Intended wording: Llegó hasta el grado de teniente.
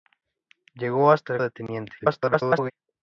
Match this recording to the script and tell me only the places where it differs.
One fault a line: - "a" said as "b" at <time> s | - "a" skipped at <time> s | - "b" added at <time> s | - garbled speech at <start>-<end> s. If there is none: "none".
- "grado" skipped at 1.4 s
- garbled speech at 2.0-2.7 s